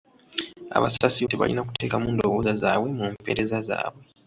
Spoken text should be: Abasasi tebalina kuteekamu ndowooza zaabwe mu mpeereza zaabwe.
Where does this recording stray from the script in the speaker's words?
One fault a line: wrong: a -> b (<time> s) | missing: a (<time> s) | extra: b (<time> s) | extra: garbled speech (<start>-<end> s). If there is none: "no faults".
no faults